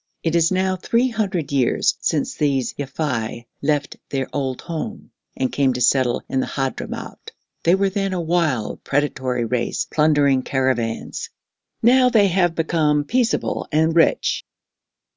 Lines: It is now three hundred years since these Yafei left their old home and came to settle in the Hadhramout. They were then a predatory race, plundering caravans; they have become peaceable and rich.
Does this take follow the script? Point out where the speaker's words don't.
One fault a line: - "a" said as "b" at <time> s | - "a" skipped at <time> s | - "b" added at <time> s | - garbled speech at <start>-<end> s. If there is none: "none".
- "wild" added at 8.2 s
- "now" added at 11.8 s